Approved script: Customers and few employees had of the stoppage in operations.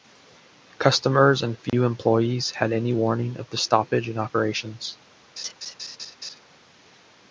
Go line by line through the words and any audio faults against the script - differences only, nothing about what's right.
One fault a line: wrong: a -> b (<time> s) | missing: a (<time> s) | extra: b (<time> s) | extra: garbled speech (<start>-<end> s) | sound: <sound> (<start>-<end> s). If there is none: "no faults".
sound: dropout (1.7-1.7 s)
extra: any warning (2.7 s)
sound: laugh (5.4-6.4 s)